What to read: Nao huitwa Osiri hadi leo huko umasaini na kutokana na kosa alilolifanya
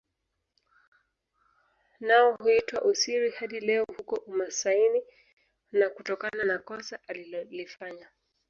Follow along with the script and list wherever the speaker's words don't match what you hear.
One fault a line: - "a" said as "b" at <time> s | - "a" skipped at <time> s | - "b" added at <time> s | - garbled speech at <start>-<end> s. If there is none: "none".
none